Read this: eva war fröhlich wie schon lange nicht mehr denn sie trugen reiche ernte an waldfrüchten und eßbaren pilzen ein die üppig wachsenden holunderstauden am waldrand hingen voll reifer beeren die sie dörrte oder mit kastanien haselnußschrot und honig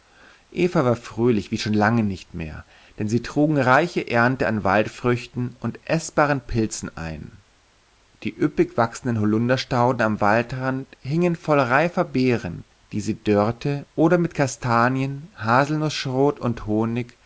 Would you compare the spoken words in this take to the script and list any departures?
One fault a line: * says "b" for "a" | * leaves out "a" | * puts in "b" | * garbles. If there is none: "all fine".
all fine